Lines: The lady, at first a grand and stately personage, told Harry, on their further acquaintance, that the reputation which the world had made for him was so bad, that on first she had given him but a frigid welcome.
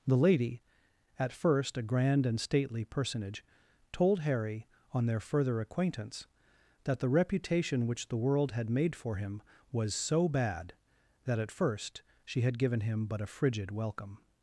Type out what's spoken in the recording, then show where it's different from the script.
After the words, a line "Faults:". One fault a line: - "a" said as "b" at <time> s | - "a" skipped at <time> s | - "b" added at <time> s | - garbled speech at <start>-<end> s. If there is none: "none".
The lady, at first a grand and stately personage, told Harry, on their further acquaintance, that the reputation which the world had made for him was so bad, that at first she had given him but a frigid welcome.
Faults:
- "on" said as "at" at 11.4 s